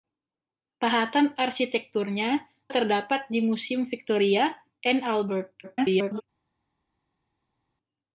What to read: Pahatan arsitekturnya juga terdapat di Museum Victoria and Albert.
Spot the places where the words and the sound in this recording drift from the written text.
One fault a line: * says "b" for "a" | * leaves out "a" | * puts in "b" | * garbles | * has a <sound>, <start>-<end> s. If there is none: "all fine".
* leaves out "juga"
* garbles